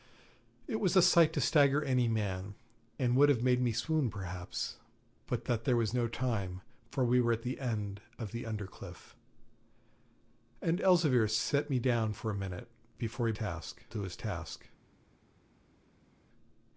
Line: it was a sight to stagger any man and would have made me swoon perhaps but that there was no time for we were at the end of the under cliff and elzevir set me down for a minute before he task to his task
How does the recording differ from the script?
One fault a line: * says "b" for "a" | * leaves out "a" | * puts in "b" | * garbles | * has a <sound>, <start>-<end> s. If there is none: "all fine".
all fine